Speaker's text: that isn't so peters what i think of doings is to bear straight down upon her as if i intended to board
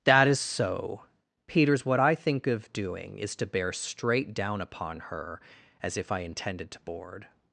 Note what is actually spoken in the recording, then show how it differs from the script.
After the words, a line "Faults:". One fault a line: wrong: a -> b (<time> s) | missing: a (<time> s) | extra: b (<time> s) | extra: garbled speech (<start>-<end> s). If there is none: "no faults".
that is so peters what i think of doing is to bear straight down upon her as if i intended to board
Faults:
wrong: isn't -> is (0.3 s)
wrong: doings -> doing (2.7 s)